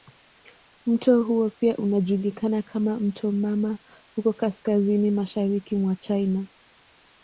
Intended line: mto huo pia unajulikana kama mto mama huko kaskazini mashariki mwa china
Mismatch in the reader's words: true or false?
false